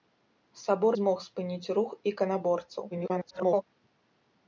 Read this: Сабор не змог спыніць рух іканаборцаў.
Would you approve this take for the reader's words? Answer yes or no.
no